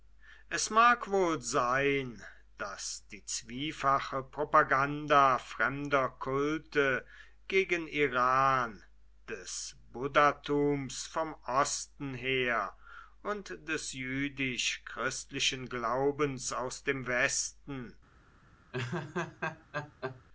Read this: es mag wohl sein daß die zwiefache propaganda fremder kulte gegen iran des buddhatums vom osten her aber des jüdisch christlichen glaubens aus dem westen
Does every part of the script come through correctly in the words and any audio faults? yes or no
no